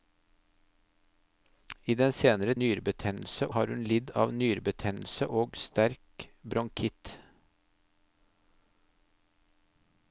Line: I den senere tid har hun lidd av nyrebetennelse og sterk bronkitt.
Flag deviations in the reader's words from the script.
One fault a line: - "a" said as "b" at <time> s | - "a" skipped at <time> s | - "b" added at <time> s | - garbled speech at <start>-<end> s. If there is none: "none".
- "tid" said as "nyrebetennelse" at 2.6 s